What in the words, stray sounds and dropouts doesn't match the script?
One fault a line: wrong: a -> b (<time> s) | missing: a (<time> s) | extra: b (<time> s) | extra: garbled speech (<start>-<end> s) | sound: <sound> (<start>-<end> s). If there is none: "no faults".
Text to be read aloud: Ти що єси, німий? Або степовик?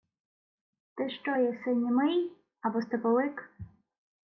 no faults